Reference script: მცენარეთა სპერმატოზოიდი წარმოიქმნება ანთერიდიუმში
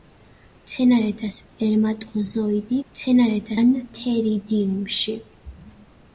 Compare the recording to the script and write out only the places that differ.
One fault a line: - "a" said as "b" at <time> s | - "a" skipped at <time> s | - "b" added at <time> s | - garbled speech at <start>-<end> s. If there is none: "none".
- "წარმოიქმნება" said as "მცენარეთა" at 2.9 s